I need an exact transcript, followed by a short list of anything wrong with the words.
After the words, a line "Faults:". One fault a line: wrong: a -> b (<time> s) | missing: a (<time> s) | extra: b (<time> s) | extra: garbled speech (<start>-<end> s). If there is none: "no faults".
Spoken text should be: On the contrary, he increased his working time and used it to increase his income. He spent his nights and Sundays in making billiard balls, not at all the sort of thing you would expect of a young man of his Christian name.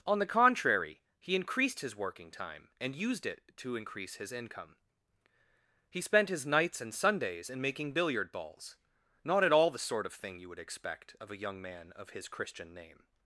On the contrary, he increased his working time and used it to increase his income. He spent his nights and Sundays in making billiard balls, not at all the sort of thing you would expect of a young man of his Christian name.
Faults:
no faults